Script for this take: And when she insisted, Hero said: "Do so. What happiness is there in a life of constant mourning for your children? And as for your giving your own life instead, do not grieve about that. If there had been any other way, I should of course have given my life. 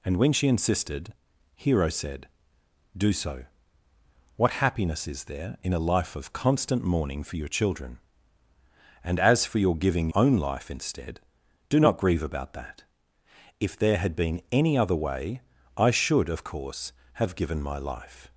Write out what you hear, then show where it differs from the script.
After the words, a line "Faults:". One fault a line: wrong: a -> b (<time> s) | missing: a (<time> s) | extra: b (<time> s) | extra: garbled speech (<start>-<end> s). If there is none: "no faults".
And when she insisted, Hero said: "Do so. What happiness is there in a life of constant mourning for your children? And as for your giving own life instead, do not grieve about that. If there had been any other way, I should of course have given my life.
Faults:
missing: your (10.1 s)